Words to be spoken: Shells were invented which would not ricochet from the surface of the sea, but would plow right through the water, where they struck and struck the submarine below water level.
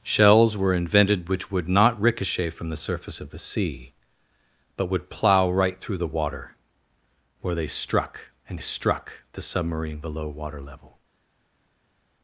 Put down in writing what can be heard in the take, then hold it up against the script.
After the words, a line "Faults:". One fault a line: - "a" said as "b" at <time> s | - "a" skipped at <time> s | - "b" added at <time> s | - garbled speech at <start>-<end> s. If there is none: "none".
Shells were invented which would not ricochet from the surface of the sea, but would plow right through the water, where they struck and struck the submarine below water level.
Faults:
none